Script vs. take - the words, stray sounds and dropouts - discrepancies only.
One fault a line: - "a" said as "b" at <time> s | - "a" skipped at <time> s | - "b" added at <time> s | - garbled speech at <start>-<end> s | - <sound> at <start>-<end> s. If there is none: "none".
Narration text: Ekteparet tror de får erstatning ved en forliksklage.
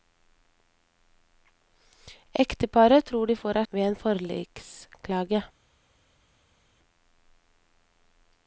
- "erstatning" skipped at 3.6 s